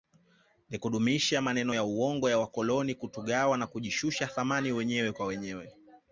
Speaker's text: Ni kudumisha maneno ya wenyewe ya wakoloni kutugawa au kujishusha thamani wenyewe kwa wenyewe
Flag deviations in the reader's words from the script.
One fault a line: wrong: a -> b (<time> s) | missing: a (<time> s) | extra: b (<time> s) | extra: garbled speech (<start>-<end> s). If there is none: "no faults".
wrong: wenyewe -> uongo (1.8 s)
wrong: au -> na (3.6 s)